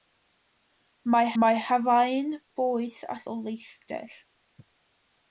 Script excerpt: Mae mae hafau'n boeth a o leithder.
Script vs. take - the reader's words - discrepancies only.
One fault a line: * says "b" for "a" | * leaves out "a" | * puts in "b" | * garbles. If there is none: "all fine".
all fine